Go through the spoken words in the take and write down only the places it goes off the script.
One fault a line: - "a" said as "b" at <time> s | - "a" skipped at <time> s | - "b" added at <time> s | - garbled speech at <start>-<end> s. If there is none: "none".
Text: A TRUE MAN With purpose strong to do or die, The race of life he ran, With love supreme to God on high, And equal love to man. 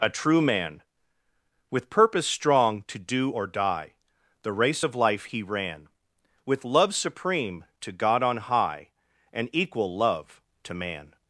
none